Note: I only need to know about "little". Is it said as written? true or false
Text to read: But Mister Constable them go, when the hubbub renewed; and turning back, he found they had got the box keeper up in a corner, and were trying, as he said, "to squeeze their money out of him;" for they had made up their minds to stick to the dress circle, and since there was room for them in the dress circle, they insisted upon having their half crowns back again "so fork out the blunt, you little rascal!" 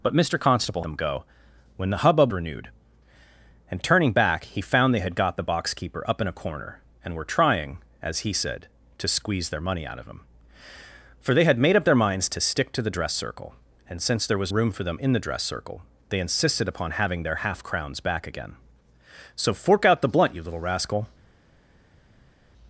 true